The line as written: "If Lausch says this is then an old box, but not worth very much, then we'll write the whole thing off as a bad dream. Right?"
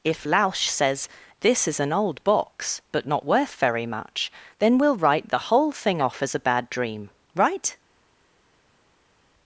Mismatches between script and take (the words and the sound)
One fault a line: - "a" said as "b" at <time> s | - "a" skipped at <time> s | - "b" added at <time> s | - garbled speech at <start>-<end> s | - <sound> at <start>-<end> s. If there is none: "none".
- "then" skipped at 1.8 s